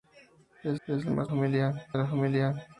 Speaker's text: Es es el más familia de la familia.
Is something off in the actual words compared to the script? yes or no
no